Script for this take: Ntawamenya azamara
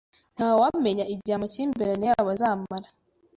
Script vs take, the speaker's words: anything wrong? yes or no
yes